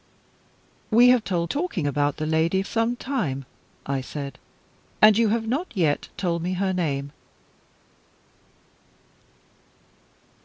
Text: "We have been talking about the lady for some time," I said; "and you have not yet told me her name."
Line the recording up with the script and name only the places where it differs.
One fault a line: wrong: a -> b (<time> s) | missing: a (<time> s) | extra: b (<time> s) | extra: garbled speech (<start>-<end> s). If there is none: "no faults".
wrong: been -> told (1.2 s)
missing: for (2.6 s)